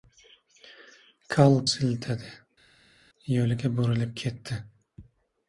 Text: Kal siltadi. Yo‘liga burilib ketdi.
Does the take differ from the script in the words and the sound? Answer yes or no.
no